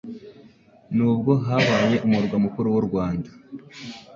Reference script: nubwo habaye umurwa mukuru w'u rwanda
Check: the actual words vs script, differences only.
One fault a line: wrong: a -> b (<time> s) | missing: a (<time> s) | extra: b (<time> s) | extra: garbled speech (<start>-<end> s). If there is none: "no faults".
no faults